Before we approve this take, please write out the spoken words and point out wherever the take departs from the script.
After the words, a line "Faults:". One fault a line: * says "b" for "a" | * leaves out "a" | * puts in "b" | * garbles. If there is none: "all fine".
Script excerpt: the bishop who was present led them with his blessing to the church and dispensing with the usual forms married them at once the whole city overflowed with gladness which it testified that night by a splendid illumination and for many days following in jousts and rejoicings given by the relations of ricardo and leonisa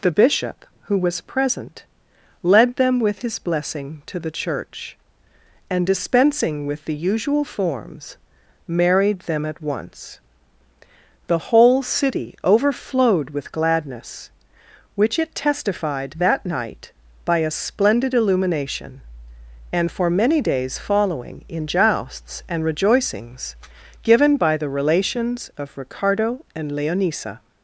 the bishop who was present led them with his blessing to the church and dispensing with the usual forms married them at once the whole city overflowed with gladness which it testified that night by a splendid illumination and for many days following in jousts and rejoicings given by the relations of ricardo and leonisa
Faults:
all fine